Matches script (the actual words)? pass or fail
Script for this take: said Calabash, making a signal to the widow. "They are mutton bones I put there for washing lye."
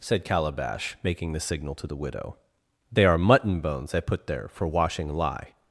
fail